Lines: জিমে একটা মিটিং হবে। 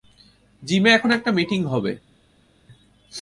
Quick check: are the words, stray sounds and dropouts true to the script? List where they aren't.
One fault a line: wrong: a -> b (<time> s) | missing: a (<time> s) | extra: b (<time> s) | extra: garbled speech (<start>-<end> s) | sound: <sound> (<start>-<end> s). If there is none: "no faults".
extra: এখন (0.9 s)